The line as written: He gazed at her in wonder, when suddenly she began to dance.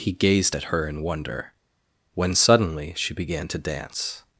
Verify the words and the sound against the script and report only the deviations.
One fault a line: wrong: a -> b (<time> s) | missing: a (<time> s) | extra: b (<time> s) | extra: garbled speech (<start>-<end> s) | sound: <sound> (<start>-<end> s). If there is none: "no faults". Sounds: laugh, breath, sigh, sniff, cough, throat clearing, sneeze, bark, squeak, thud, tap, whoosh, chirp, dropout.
no faults